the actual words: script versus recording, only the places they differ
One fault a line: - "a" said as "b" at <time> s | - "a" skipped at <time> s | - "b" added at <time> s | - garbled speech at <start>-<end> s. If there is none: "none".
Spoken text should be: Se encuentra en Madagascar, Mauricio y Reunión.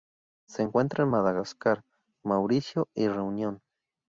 none